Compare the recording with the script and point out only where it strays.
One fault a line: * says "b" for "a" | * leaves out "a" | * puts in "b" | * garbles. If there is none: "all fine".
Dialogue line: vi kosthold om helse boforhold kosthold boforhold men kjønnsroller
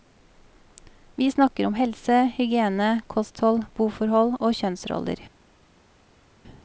* says "snakker" for "kosthold"
* says "hygiene" for "boforhold"
* says "og" for "men"